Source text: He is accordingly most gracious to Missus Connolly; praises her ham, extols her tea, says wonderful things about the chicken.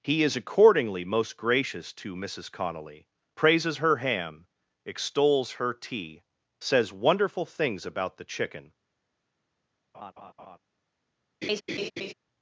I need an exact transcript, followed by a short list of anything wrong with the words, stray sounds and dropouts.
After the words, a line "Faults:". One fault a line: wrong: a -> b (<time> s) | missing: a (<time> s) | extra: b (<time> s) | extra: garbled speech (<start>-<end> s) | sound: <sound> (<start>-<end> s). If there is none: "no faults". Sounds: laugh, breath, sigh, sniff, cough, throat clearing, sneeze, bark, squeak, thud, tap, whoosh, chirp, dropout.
He is accordingly most gracious to Missus Connolly; praises her ham, extols her tea, says wonderful things about the chicken.
Faults:
sound: laugh (9.9-10.6 s)
sound: laugh (11.4-12.1 s)